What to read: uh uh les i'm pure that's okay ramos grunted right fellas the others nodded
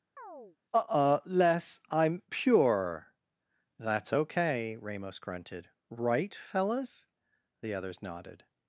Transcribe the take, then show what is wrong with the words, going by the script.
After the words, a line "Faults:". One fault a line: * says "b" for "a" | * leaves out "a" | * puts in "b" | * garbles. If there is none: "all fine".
uh uh les i'm pure that's okay ramos grunted right fellas the others nodded
Faults:
all fine